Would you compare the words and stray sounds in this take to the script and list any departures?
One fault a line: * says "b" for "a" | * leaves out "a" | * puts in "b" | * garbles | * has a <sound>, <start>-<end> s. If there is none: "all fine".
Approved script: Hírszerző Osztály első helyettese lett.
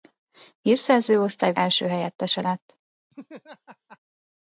* has a laugh, 3.1-4.0 s